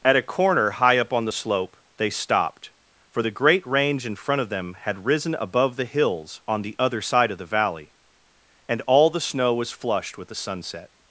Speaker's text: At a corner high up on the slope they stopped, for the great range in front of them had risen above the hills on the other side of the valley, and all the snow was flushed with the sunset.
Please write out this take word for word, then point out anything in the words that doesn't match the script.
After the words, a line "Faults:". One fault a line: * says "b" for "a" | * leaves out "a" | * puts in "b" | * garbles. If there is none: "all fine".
At a corner high up on the slope they stopped, for the great range in front of them had risen above the hills on the other side of the valley, and all the snow was flushed with the sunset.
Faults:
all fine